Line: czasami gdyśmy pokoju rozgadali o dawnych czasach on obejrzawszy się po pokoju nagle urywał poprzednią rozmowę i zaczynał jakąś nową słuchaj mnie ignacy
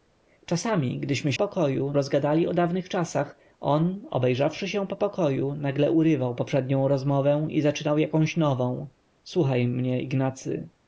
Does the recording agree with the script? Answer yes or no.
yes